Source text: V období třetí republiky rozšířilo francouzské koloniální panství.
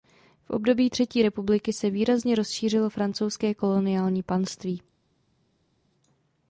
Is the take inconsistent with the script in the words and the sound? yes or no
yes